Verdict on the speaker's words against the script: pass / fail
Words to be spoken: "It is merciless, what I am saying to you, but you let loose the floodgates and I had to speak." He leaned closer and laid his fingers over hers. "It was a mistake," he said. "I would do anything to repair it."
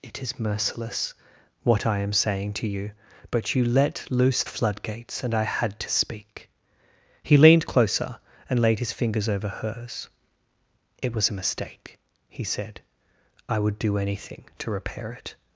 fail